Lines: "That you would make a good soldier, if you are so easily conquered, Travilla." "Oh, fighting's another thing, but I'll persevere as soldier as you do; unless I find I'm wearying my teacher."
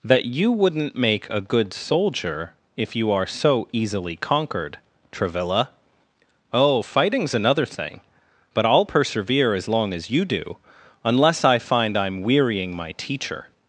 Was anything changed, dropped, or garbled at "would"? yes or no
yes